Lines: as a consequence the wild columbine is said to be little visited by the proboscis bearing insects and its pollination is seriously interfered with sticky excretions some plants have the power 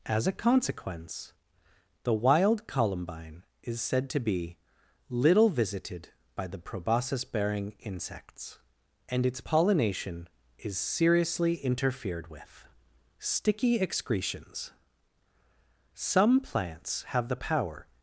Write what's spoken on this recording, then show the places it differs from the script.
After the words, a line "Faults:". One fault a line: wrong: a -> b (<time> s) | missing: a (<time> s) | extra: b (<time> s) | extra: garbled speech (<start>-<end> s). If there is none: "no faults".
as a consequence the wild columbine is said to be little visited by the proboscis bearing insects and its pollination is seriously interfered with sticky excretions some plants have the power
Faults:
no faults